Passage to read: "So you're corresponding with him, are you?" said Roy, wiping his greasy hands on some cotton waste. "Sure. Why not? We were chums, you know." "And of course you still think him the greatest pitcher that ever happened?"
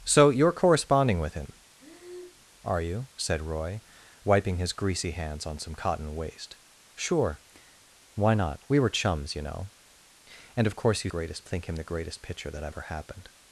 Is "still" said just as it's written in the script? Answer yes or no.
no